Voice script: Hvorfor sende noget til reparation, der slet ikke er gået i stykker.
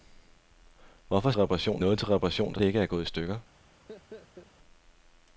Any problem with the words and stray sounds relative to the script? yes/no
yes